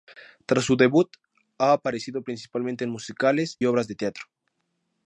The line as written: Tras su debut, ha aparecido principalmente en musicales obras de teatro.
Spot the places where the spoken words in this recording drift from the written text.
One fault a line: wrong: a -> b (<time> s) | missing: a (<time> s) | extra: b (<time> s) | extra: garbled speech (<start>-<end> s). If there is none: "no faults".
no faults